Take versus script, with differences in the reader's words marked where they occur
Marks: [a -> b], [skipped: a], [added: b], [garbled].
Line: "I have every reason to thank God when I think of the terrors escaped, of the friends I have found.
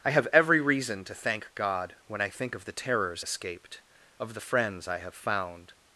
"I have every reason to thank God when I think of the terrors escaped, of the friends I have found.